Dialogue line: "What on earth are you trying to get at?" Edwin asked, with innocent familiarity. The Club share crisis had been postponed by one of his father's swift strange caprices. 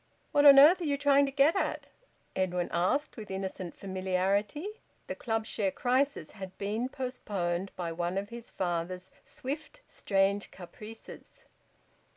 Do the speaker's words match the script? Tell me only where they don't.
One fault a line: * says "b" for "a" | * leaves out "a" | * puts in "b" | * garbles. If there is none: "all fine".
all fine